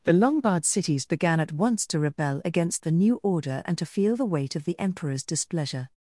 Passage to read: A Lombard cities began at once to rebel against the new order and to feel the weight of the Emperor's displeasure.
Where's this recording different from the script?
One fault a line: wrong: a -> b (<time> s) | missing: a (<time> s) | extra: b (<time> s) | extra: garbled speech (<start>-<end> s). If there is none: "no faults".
wrong: A -> The (0.0 s)